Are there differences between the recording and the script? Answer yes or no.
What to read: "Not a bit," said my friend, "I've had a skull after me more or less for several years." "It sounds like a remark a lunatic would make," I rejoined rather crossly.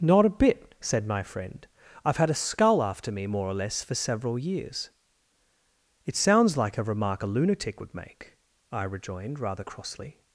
no